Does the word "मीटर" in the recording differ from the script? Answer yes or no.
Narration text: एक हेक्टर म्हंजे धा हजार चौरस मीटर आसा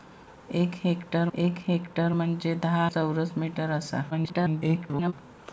no